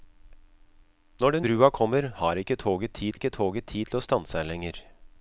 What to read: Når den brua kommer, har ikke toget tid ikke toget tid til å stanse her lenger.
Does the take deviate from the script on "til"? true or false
false